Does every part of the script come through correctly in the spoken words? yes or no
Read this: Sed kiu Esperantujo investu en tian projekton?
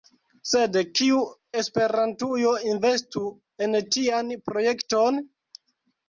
yes